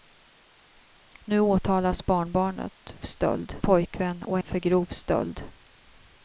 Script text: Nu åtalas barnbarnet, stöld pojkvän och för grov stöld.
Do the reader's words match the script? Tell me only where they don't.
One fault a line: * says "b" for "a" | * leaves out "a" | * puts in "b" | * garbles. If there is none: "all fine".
all fine